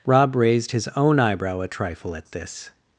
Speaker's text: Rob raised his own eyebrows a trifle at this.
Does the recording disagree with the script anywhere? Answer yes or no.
yes